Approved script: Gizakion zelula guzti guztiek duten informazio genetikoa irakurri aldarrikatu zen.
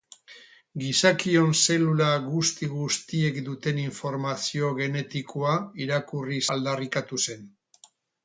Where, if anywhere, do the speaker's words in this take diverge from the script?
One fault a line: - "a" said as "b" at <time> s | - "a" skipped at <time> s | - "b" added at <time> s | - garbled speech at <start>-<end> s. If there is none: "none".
none